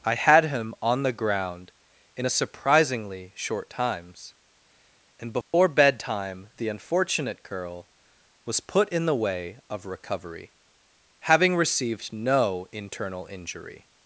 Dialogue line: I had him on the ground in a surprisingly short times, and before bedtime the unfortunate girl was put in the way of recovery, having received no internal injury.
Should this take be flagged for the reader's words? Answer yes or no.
no